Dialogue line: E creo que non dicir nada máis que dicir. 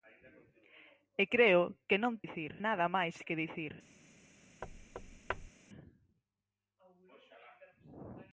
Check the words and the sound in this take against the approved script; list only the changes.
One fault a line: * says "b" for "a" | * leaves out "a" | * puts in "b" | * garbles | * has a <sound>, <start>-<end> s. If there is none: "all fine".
* has a thud, 4.6-5.5 s